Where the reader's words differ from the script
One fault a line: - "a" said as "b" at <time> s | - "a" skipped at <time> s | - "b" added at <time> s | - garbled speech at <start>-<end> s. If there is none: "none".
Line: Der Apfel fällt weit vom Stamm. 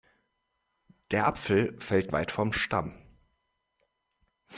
none